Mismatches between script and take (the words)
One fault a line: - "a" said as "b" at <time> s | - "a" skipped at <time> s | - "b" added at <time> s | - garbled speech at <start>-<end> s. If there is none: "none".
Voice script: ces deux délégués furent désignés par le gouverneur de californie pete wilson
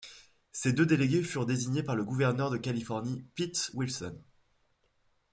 none